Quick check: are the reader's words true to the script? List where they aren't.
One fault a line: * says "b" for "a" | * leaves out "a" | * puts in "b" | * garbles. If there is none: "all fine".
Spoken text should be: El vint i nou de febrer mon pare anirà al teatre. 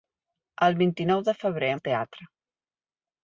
* leaves out "mon pare anirà"